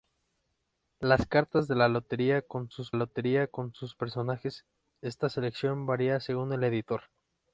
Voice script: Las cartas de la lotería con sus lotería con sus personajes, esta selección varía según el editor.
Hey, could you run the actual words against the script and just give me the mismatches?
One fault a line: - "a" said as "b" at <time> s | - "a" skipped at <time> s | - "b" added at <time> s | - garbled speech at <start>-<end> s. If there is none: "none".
none